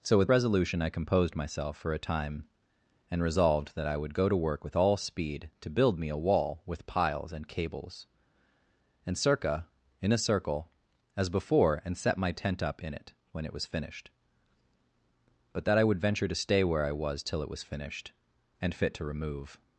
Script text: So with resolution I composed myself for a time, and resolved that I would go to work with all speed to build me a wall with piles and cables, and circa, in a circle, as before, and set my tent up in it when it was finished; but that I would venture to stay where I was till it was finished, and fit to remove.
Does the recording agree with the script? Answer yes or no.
yes